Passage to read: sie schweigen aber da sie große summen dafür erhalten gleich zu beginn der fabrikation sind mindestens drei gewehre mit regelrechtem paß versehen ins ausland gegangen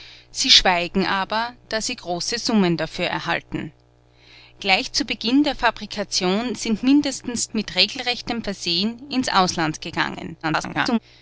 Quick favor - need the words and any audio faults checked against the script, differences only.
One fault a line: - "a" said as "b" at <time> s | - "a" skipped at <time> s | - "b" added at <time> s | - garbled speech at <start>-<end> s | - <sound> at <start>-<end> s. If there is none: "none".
- "drei gewehre" skipped at 7.5 s
- "paß" skipped at 8.4 s
- garbled speech at 10.4-11.0 s